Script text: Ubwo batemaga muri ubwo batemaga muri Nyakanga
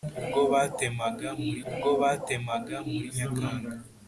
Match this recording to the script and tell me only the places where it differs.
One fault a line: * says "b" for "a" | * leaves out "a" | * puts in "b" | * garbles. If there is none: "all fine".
all fine